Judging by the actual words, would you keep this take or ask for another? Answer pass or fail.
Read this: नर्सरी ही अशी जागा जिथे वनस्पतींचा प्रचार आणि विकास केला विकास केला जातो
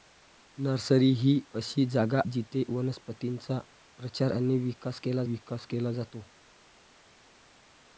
pass